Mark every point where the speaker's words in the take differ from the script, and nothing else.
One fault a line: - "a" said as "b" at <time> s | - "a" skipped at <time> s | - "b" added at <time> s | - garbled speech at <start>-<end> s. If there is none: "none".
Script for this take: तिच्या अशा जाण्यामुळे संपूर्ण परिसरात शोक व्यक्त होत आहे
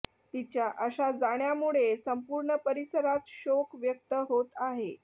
none